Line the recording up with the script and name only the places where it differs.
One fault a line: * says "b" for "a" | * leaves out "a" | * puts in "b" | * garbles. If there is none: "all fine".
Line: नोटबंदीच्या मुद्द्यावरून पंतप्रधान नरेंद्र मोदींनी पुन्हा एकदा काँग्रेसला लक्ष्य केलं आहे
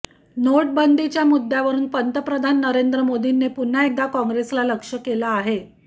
all fine